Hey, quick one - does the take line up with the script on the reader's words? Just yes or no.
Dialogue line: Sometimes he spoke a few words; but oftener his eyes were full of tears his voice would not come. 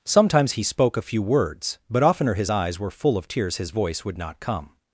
yes